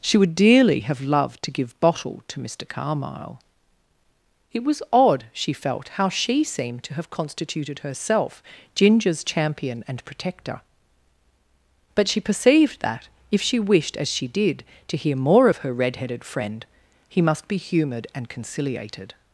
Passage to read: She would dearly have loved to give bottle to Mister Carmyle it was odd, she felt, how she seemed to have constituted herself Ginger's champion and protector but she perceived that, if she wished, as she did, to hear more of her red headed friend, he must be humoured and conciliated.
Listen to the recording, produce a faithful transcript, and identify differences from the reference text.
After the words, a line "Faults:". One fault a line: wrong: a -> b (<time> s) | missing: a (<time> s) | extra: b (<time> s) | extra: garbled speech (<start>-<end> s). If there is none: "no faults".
She would dearly have loved to give bottle to Mister Carmyle it was odd, she felt, how she seemed to have constituted herself Ginger's champion and protector but she perceived that, if she wished, as she did, to hear more of her red headed friend, he must be humoured and conciliated.
Faults:
no faults